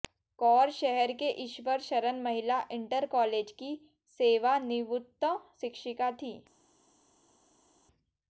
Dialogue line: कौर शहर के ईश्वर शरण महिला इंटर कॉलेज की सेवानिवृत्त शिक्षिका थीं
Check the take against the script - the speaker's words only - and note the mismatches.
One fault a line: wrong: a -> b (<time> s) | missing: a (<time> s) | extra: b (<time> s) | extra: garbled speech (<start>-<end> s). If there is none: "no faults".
no faults